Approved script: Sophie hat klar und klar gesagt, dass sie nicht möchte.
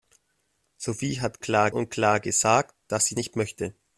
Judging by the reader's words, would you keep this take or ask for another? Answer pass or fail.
pass